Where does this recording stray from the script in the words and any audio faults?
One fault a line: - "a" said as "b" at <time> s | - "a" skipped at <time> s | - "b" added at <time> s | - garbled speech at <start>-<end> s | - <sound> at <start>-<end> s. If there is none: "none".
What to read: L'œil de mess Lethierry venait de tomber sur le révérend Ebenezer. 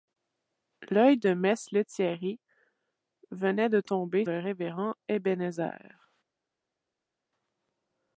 - "sur" skipped at 4.2 s